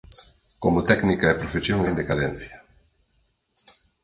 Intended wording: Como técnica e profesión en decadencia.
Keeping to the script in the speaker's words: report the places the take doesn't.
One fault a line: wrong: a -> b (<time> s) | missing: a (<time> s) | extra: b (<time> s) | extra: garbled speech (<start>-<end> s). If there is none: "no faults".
no faults